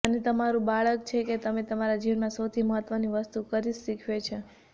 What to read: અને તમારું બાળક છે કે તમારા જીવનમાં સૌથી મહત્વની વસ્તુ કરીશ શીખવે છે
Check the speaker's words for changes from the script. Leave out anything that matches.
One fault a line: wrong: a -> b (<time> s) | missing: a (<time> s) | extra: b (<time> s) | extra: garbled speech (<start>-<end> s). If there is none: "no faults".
extra: તમે (1.4 s)